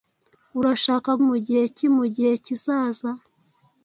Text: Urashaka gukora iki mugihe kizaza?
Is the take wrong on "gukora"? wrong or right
wrong